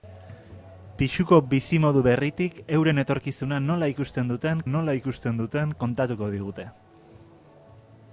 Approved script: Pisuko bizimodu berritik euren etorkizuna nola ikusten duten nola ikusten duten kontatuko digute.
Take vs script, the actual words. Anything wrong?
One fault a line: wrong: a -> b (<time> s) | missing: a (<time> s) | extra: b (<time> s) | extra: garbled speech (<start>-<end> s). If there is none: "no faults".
no faults